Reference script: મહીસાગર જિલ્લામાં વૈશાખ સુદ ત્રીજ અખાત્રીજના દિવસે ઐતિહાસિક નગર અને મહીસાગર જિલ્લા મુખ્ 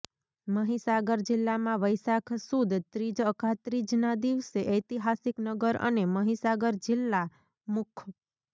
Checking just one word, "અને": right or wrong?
right